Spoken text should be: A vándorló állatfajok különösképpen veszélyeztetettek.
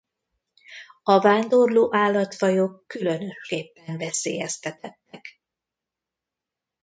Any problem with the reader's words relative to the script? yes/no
no